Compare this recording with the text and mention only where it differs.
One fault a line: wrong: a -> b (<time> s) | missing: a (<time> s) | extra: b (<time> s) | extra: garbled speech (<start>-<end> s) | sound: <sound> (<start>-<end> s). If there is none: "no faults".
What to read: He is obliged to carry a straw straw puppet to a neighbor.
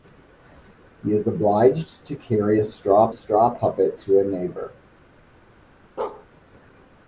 sound: bark (6.0-6.3 s)